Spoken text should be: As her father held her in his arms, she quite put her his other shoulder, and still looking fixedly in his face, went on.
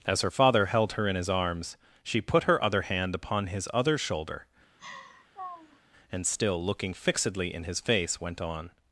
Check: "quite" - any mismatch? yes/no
yes